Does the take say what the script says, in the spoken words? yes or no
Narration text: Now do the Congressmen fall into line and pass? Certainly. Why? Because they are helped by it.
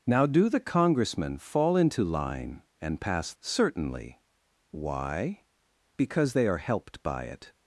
yes